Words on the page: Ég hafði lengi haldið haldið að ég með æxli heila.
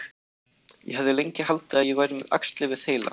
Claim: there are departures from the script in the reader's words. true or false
true